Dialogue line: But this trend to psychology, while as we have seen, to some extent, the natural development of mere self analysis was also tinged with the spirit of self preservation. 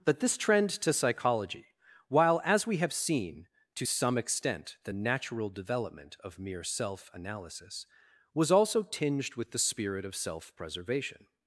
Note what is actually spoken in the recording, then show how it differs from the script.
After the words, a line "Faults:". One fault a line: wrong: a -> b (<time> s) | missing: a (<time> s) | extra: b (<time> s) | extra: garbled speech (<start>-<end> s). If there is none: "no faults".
But this trend to psychology, while as we have seen, to some extent, the natural development of mere self analysis was also tinged with the spirit of self preservation.
Faults:
no faults